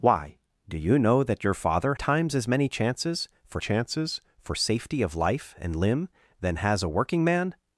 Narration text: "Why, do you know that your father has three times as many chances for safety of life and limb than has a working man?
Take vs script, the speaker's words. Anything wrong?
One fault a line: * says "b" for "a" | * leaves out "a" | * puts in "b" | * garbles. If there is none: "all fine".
* leaves out "has three"
* puts in "chances for"